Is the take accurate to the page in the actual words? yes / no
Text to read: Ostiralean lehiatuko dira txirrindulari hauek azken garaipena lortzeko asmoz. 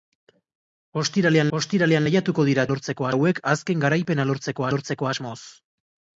no